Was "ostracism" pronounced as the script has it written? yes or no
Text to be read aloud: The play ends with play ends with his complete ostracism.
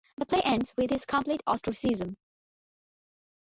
yes